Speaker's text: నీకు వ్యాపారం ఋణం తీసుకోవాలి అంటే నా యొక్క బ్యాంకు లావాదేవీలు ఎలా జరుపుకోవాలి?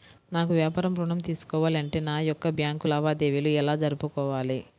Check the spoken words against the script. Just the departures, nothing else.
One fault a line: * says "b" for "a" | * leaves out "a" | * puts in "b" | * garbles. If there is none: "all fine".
* says "నాకు" for "నీకు"